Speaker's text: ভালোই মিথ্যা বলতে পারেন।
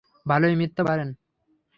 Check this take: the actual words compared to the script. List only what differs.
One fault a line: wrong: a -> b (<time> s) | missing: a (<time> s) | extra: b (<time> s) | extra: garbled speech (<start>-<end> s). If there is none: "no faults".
missing: বলতে (0.8 s)